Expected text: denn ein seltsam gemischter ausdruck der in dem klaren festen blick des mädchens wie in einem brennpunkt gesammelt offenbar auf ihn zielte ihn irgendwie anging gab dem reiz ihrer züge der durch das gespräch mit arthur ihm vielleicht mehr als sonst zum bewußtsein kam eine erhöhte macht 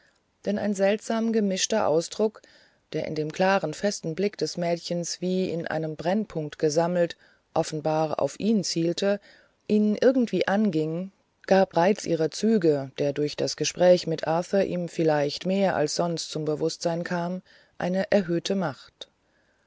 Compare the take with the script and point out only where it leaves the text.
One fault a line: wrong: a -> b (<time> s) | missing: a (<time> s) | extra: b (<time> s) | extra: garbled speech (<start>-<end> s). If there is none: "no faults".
missing: dem (11.7 s)